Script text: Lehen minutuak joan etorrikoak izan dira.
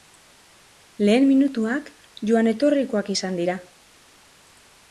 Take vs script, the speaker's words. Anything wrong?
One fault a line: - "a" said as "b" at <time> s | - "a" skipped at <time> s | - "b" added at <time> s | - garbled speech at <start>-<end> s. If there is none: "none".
none